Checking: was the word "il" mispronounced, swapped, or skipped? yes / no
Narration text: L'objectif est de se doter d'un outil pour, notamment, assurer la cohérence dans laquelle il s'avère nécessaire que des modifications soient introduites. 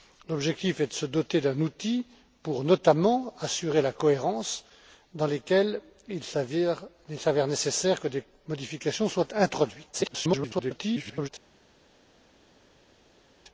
no